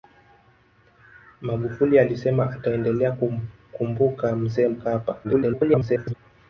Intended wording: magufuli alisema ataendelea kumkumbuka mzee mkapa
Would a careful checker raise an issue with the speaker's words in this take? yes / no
yes